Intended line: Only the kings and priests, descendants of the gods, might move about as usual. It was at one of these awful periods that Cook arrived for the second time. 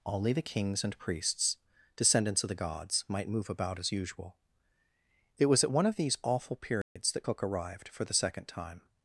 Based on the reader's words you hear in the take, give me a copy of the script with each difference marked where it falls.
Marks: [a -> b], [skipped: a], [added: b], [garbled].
Only the kings and priests, descendants of the gods, might move about as usual. It was at one of these awful periods that Cook arrived for the second time.